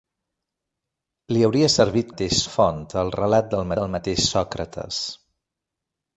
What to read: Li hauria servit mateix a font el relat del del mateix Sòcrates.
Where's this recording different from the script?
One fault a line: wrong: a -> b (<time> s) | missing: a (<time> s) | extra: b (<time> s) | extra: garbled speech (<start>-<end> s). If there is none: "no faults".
no faults